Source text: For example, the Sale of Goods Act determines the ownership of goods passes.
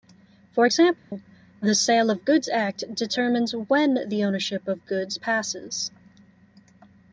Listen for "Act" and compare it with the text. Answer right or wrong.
right